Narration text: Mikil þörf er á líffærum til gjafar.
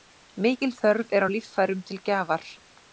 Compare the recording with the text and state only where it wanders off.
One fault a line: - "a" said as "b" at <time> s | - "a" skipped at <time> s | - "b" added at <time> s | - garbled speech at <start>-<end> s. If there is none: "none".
none